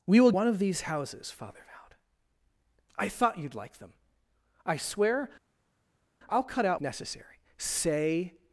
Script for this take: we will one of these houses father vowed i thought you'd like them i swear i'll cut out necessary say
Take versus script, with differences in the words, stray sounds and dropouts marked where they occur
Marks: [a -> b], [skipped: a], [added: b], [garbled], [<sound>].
we will one of these houses father vowed i thought you'd like them i swear i'll cut out necessary say